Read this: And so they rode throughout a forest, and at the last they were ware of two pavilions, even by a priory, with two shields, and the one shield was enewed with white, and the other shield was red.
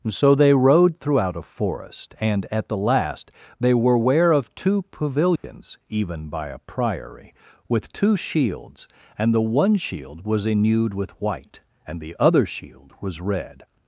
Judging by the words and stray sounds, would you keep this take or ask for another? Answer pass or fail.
fail